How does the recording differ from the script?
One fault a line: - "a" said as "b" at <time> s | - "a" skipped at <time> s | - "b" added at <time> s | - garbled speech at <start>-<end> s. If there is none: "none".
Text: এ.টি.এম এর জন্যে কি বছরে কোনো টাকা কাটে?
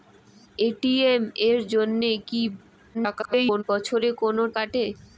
- garbled speech at 2.9-3.6 s
- "টাকা" skipped at 4.4 s